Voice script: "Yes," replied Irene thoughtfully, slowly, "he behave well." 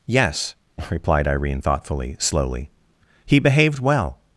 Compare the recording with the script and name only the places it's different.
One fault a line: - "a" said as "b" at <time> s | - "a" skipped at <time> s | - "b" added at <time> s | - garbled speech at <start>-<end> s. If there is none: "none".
- "behave" said as "behaved" at 3.4 s